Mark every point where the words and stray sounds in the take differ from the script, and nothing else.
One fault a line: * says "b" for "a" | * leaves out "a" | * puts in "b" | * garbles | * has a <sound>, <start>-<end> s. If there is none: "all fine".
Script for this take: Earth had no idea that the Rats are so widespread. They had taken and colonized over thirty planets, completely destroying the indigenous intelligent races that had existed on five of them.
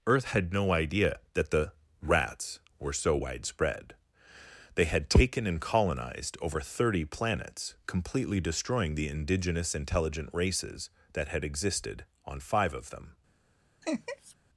* says "were" for "are"
* has a laugh, 13.8-14.3 s